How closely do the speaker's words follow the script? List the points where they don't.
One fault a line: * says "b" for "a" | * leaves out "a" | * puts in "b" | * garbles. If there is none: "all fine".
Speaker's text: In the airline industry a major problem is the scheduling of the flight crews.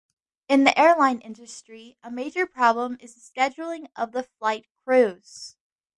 all fine